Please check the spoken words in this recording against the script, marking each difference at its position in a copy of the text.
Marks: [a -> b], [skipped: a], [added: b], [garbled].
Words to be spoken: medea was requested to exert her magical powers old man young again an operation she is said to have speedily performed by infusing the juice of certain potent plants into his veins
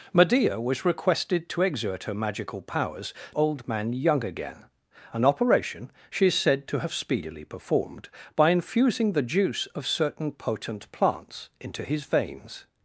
medea was requested to exert her magical powers old man young again an operation she is said to have speedily performed by infusing the juice of certain potent plants into his veins